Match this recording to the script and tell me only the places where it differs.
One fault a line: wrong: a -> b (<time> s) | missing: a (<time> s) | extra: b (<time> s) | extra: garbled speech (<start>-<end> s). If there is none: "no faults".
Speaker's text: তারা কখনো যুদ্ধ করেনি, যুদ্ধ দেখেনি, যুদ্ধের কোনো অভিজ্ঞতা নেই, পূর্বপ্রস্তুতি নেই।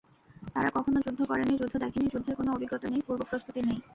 no faults